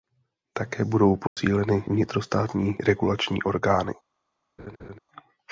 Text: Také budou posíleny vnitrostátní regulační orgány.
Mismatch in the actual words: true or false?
false